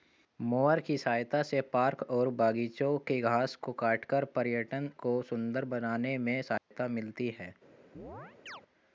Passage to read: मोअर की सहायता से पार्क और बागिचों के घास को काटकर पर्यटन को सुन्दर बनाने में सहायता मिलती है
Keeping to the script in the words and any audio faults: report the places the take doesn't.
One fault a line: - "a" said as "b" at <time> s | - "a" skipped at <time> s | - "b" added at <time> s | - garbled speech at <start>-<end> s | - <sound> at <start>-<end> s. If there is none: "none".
- dropout at 6.6-6.7 s
- chirp at 7.9-8.6 s